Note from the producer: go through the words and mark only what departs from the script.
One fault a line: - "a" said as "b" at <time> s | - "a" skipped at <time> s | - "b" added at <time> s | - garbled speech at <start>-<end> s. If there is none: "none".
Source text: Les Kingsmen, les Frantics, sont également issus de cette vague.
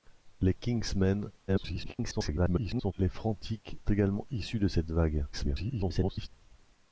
- garbled speech at 1.5-2.9 s
- "sont" skipped at 3.8 s
- garbled speech at 5.3-6.3 s